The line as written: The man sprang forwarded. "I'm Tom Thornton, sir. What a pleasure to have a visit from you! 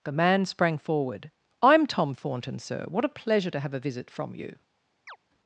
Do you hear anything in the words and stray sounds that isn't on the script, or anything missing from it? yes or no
yes